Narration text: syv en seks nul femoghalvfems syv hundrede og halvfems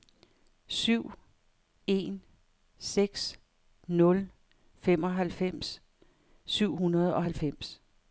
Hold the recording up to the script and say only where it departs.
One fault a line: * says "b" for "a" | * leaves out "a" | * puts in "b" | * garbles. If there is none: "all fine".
all fine